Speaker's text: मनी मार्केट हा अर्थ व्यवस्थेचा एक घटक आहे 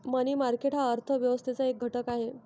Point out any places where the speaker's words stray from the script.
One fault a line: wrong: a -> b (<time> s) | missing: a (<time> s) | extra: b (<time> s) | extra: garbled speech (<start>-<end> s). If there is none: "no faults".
no faults